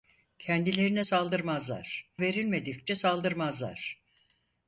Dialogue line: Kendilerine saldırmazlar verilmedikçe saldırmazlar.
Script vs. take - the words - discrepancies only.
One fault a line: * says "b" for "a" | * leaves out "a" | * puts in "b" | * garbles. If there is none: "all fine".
all fine